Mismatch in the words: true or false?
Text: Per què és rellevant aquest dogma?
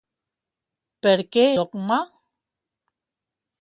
true